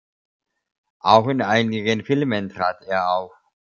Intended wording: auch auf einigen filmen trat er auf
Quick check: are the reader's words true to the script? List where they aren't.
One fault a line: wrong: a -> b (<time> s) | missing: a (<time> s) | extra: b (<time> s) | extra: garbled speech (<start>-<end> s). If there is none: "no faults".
wrong: auf -> in (1.3 s)